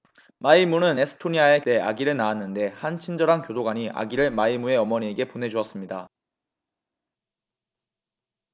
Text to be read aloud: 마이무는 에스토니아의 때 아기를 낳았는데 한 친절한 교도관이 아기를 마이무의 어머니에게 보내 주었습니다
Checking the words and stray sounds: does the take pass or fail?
pass